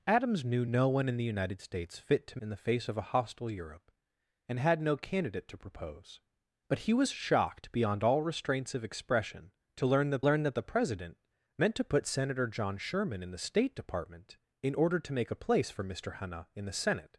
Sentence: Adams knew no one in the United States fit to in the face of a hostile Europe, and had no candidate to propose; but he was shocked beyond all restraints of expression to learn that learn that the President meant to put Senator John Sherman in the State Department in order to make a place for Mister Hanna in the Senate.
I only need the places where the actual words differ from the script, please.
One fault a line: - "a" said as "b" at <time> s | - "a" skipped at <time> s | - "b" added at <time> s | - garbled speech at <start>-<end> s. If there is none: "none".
none